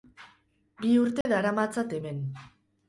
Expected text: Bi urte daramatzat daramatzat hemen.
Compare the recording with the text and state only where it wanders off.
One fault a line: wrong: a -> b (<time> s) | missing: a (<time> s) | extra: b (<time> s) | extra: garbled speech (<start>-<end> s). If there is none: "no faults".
missing: daramatzat (2.0 s)